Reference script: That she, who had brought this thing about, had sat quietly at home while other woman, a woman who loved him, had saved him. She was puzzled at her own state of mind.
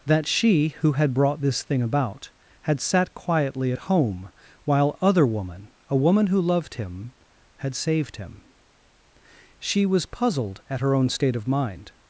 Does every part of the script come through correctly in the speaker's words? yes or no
yes